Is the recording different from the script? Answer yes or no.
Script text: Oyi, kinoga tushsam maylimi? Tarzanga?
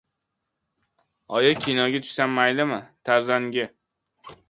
no